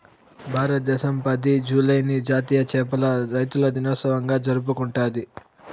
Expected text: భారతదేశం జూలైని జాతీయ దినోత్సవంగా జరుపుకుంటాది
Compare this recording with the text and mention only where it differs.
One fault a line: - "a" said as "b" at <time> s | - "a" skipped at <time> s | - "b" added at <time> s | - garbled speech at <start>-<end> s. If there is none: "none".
- "పది" added at 1.2 s
- "చేపల రైతుల" added at 2.7 s